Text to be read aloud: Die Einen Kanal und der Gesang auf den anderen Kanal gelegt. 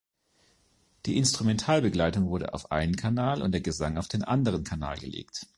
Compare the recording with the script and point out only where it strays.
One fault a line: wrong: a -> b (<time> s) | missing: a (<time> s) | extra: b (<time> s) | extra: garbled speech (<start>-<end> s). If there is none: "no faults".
extra: Instrumentalbegleitung wurde auf (1.2 s)